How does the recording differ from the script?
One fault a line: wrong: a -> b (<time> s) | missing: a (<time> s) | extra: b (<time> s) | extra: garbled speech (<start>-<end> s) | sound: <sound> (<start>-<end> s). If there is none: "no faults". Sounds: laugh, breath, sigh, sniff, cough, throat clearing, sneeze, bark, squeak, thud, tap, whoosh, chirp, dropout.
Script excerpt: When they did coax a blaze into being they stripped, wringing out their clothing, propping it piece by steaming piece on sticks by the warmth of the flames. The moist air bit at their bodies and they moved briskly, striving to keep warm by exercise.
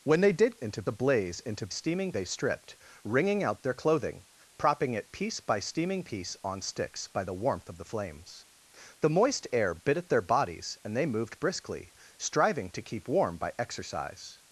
wrong: coax -> into (0.5 s)
wrong: being -> steaming (1.7 s)